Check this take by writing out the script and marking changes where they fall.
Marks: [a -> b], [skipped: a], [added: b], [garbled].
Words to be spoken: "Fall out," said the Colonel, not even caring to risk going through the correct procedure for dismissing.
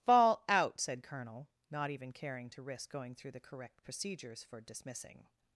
"Fall out," said [skipped: the] Colonel, not even caring to risk going through the correct [procedure -> procedures] for dismissing.